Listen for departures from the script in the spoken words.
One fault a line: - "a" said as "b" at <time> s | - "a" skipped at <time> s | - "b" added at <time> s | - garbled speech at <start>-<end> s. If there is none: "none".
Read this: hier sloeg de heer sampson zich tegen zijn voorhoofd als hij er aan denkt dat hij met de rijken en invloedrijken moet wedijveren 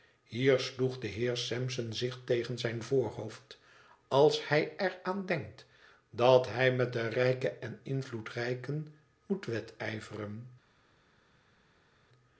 none